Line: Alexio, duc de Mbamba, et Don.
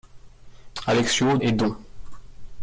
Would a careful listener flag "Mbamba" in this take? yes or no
yes